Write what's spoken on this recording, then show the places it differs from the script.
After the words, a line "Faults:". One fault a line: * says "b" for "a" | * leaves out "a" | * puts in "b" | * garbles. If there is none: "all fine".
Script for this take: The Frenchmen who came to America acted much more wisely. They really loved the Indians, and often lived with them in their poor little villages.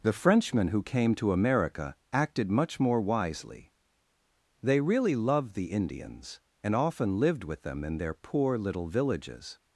The Frenchmen who came to America acted much more wisely. They really loved the Indians, and often lived with them in their poor little villages.
Faults:
all fine